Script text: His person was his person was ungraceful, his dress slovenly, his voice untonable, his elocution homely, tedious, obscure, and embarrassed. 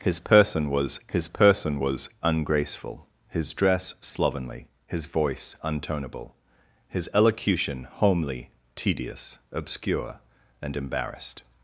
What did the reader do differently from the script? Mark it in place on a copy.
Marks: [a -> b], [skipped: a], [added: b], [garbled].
His person was his person was ungraceful, his dress slovenly, his voice untonable, his elocution homely, tedious, obscure, and embarrassed.